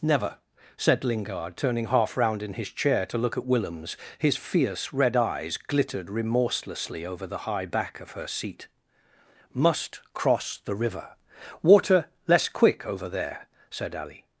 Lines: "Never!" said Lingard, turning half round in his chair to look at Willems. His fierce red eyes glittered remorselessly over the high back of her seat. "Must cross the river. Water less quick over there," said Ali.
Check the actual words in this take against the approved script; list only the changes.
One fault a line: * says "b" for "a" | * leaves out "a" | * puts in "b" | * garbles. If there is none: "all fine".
all fine